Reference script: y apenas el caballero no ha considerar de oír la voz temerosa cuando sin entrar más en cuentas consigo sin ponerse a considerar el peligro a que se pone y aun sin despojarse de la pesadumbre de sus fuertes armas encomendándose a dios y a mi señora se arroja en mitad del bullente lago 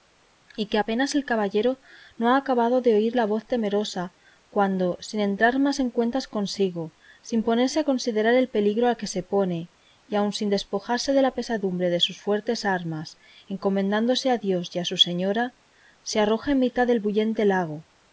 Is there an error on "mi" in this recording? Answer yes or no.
yes